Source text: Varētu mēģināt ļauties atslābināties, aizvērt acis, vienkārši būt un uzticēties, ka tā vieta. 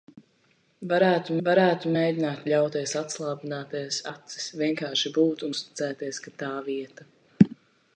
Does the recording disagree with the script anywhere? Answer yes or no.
yes